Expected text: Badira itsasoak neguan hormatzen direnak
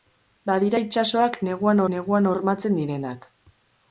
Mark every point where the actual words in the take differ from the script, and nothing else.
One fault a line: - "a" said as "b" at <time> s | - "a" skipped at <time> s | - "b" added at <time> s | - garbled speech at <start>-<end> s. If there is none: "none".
- "neguan" added at 1.9 s